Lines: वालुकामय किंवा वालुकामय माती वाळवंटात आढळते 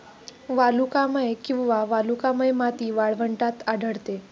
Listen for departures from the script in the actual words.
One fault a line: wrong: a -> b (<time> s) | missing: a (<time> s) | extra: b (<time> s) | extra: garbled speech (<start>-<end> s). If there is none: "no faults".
no faults